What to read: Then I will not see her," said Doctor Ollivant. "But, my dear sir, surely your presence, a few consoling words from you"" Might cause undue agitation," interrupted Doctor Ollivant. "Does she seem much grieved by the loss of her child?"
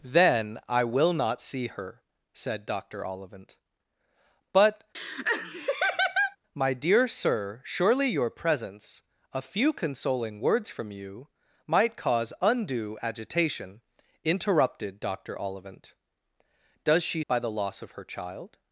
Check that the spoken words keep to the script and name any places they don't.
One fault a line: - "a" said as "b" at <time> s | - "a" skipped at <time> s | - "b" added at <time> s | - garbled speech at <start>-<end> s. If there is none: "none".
- "seem much grieved" skipped at 17.2 s